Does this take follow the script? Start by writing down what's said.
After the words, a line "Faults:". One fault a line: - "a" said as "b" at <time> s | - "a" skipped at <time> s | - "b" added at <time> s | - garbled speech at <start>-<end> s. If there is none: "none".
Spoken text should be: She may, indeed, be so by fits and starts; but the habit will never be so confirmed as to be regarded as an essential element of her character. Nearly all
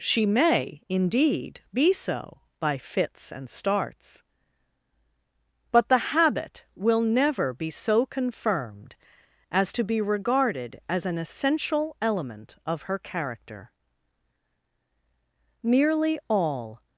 She may, indeed, be so by fits and starts; but the habit will never be so confirmed as to be regarded as an essential element of her character. Nearly all
Faults:
none